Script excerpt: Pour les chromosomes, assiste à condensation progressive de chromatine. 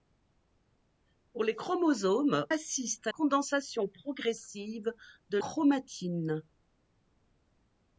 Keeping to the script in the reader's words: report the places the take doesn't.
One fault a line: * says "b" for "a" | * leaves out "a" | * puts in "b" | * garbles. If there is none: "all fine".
all fine